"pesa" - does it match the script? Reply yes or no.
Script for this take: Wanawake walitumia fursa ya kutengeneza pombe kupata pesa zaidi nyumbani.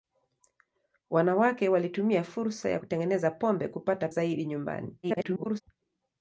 no